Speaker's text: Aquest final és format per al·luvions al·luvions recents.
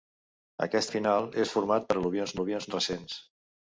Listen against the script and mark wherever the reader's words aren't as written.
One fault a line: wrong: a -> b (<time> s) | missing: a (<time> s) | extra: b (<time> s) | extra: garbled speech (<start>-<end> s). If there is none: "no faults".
no faults